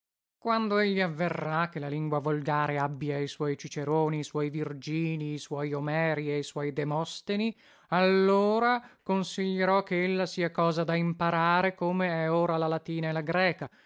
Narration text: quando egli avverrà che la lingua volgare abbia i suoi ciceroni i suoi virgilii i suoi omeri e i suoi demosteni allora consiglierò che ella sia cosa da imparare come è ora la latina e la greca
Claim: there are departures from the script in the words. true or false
false